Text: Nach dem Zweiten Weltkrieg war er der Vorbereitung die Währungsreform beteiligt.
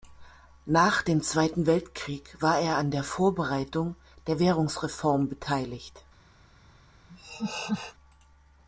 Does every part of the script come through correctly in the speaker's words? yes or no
no